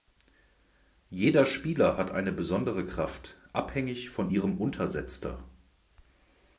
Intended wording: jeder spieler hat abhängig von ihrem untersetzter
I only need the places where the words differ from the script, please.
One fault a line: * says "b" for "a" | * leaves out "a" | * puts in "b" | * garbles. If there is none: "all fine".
* puts in "eine besondere kraft"